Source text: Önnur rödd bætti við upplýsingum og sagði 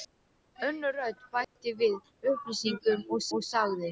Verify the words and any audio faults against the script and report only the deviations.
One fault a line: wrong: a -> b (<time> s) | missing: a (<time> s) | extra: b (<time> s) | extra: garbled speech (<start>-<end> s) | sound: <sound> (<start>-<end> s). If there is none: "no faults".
sound: dropout (1.4-1.6 s)
extra: og (3.4 s)